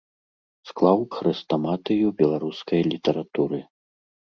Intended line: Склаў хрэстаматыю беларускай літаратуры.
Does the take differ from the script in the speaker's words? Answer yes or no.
no